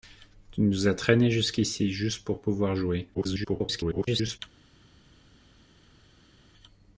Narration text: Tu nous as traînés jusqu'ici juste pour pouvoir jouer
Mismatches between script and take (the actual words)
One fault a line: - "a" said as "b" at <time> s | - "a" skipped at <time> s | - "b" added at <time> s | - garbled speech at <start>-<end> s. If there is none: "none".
- garbled speech at 3.1-4.4 s